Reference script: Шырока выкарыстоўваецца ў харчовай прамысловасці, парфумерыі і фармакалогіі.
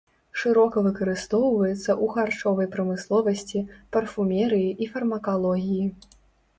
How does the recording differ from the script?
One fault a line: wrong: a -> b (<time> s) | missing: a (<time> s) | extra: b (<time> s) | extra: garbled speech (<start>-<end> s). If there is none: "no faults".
no faults